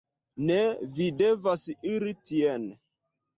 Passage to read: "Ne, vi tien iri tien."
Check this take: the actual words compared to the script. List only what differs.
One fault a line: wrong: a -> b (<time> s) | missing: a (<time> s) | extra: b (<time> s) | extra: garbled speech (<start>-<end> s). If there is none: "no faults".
wrong: tien -> devas (1.2 s)